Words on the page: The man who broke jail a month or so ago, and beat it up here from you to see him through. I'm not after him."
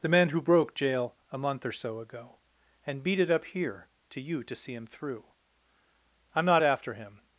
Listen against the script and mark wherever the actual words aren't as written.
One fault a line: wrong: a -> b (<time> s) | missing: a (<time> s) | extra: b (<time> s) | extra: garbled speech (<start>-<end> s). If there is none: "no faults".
wrong: from -> to (4.1 s)